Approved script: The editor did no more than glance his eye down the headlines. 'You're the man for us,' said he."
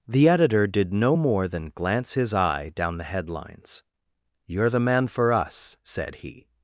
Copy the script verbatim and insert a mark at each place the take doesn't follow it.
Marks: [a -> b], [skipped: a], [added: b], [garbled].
The editor did no more than glance his eye down the headlines. 'You're the man for us,' said he."